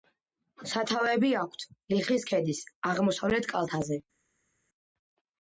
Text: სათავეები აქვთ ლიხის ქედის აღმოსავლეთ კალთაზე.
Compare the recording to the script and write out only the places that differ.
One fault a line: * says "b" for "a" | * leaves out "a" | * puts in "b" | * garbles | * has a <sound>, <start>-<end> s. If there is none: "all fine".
all fine